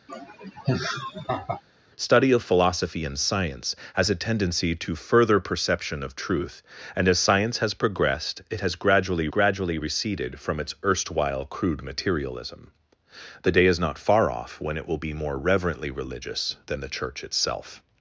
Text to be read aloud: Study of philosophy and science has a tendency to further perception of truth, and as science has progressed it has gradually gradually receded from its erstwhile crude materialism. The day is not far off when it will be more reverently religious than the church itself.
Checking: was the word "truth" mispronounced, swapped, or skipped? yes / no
no